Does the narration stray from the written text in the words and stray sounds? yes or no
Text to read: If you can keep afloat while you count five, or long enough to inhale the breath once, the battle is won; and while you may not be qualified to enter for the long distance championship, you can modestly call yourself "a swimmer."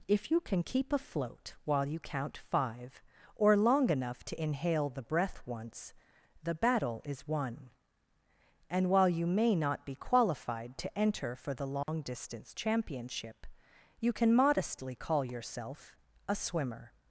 yes